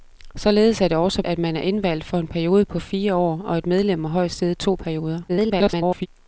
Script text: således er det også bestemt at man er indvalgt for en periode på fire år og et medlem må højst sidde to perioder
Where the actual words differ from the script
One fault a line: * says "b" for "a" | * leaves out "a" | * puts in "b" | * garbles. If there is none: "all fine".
* leaves out "bestemt"
* garbles